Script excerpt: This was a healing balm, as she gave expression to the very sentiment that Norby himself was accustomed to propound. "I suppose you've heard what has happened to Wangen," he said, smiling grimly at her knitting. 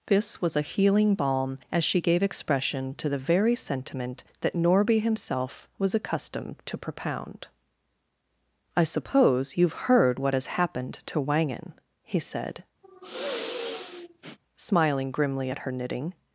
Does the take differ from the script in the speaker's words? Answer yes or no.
no